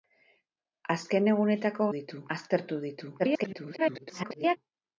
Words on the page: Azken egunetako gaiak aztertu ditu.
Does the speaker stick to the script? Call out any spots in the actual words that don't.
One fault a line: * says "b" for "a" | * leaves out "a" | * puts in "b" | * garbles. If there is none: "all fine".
* says "ditu" for "gaiak"
* garbles